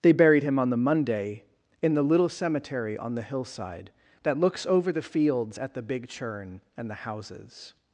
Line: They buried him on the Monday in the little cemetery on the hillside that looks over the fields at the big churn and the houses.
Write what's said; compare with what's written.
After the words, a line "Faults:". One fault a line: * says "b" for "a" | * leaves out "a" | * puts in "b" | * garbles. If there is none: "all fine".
They buried him on the Monday in the little cemetery on the hillside that looks over the fields at the big churn and the houses.
Faults:
all fine